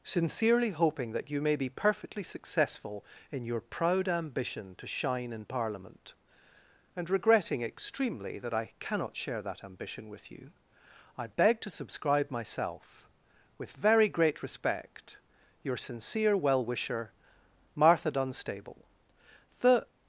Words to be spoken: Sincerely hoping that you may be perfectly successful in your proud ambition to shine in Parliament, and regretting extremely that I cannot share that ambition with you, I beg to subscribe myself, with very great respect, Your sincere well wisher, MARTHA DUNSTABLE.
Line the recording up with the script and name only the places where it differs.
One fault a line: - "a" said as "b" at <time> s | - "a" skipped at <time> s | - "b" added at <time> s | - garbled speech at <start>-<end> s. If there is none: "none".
- "The" added at 19.6 s